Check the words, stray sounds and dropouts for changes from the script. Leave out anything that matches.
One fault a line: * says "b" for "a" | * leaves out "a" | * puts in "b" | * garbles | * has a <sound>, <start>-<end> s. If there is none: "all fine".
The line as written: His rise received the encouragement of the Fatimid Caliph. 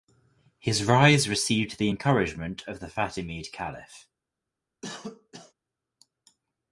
* has a cough, 4.8-5.5 s